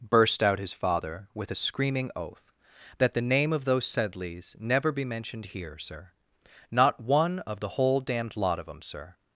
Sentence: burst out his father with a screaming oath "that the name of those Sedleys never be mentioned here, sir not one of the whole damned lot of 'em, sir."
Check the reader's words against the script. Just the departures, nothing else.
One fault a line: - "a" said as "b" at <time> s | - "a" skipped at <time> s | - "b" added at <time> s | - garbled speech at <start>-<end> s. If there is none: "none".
none